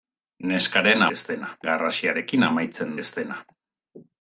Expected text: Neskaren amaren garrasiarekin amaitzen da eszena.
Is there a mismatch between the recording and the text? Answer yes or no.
yes